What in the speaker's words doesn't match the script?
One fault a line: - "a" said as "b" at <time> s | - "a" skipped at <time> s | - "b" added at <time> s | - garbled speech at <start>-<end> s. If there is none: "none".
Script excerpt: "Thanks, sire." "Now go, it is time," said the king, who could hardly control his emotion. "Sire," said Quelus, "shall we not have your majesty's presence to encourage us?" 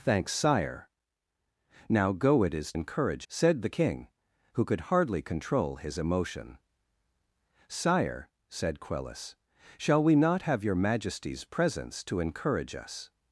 - "time" said as "encourage" at 2.7 s